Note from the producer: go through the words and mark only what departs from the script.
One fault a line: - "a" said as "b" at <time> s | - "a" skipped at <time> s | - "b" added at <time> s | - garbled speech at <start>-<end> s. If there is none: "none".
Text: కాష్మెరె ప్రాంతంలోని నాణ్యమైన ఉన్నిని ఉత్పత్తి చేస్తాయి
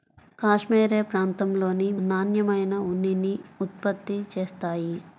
none